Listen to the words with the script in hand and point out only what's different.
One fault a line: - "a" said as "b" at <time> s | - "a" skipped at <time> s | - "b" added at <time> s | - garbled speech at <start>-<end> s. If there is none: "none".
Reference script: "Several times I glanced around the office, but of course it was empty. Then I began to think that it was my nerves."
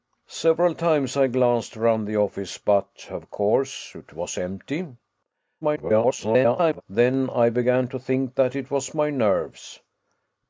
- garbled speech at 5.6-6.8 s